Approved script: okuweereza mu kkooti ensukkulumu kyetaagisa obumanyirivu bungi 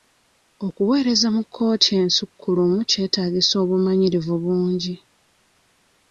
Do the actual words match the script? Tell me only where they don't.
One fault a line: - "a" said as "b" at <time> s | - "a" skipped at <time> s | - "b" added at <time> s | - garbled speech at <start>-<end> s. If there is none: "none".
none